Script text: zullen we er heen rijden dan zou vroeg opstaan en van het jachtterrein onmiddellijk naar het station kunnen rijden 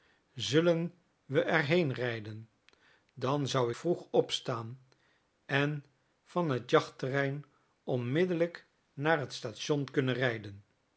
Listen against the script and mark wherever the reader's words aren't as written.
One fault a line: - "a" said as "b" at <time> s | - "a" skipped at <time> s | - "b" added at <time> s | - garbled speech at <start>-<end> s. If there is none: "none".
none